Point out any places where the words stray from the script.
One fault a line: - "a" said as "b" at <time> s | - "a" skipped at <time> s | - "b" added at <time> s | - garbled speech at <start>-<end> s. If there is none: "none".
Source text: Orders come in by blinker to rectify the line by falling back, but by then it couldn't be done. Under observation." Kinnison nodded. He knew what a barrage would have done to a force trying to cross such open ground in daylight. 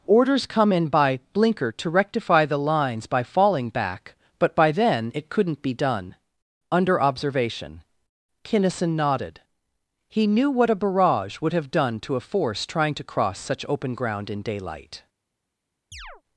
- "line" said as "lines" at 2.6 s